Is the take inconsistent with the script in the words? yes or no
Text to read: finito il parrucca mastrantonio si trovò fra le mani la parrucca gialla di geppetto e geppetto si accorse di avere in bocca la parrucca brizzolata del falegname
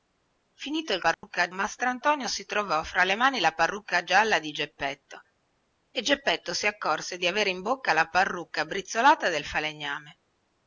no